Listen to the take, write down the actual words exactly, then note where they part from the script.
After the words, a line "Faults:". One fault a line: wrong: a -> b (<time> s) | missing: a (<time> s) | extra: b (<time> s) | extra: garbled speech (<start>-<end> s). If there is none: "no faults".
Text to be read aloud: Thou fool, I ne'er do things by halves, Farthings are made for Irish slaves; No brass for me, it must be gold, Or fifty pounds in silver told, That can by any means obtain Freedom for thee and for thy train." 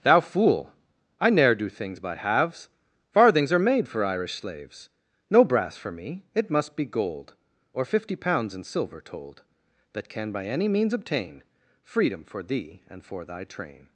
Thou fool, I ne'er do things by halves, Farthings are made for Irish slaves; No brass for me, it must be gold, Or fifty pounds in silver told, That can by any means obtain Freedom for thee and for thy train."
Faults:
no faults